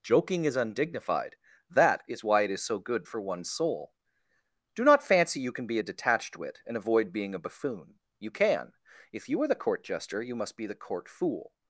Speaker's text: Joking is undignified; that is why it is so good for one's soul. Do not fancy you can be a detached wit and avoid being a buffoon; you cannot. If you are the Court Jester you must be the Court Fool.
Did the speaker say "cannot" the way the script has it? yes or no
no